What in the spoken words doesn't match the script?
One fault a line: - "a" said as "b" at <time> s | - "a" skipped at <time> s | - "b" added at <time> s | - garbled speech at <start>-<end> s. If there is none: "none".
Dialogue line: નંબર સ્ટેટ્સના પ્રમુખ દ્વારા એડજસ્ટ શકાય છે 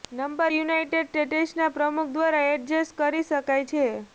- "યુનાઇટેડ" added at 0.5 s
- "કરી" added at 3.0 s